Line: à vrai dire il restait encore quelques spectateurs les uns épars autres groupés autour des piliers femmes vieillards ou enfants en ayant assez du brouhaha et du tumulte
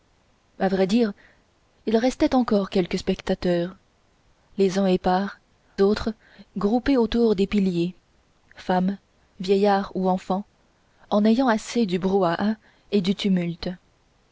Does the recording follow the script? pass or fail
pass